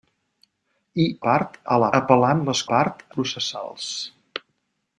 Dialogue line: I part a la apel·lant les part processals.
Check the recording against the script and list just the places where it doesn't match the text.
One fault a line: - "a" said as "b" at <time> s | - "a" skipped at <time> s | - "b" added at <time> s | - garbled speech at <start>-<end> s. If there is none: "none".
none